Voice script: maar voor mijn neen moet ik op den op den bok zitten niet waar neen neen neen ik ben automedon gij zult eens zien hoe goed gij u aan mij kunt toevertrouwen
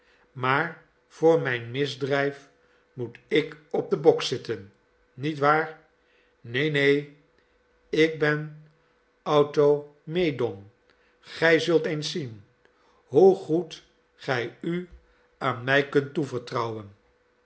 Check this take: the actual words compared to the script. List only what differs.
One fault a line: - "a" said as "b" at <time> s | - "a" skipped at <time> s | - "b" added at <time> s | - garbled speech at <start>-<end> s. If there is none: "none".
- "neen" said as "misdrijf" at 1.7 s
- "op den" skipped at 4.0 s
- "neen" skipped at 7.2 s